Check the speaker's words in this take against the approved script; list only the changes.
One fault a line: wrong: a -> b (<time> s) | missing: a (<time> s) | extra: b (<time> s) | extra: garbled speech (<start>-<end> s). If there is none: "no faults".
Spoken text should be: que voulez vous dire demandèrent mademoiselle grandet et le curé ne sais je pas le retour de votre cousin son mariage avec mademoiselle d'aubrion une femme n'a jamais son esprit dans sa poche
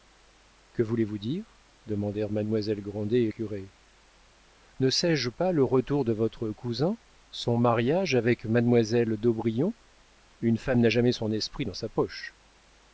missing: le (3.3 s)